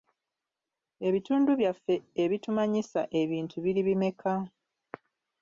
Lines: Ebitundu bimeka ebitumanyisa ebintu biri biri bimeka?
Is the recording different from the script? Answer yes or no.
yes